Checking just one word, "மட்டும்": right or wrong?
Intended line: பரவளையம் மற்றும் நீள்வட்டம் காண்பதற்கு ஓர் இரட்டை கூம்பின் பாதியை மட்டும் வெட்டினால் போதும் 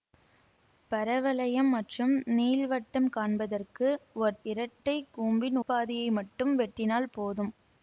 right